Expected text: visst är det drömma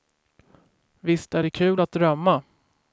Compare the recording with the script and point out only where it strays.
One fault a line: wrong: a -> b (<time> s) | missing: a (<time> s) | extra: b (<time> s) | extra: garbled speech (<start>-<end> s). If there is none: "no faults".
extra: kul att (1.5 s)